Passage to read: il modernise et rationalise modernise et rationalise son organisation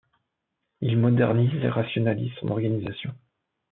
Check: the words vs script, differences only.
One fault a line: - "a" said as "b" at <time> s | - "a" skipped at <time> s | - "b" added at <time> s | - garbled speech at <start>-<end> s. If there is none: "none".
- "modernise et rationalise" skipped at 2.3 s